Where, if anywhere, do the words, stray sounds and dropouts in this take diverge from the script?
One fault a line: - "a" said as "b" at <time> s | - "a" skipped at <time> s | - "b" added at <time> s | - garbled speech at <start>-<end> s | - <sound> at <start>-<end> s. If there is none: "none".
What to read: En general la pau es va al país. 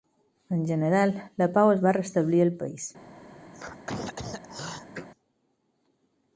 - "restablir" added at 2.0 s
- throat clearing at 3.5-5.1 s